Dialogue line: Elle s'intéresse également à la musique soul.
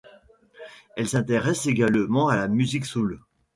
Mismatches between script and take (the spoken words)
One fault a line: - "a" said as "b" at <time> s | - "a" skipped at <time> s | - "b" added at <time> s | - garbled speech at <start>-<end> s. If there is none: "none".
none